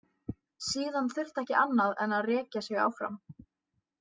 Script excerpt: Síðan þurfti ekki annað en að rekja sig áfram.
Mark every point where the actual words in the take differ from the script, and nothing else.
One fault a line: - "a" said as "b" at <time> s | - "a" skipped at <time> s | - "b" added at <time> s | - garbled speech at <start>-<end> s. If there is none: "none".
none